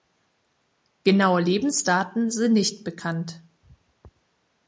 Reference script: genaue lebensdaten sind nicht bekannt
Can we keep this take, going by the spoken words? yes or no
yes